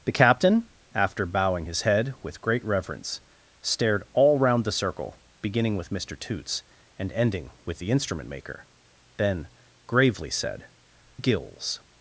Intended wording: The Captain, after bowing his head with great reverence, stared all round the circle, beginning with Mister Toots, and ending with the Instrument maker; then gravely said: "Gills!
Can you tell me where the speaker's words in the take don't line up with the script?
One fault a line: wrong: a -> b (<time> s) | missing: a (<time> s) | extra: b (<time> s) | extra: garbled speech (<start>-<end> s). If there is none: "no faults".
no faults